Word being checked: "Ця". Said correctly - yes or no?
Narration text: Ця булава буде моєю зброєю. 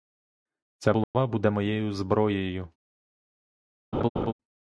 yes